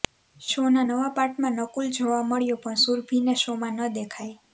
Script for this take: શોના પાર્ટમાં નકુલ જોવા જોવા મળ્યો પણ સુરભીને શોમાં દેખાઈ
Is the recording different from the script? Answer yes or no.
yes